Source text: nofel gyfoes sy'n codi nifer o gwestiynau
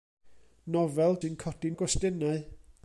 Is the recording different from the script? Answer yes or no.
yes